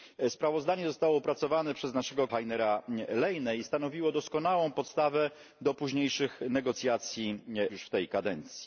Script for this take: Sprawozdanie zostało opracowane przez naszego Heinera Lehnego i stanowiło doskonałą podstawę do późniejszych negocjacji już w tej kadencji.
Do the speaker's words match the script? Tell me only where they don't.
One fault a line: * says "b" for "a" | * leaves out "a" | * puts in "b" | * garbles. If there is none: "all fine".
all fine